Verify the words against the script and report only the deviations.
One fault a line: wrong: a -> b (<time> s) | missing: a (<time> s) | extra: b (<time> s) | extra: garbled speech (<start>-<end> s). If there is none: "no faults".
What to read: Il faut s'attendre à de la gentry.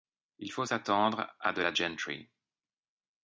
no faults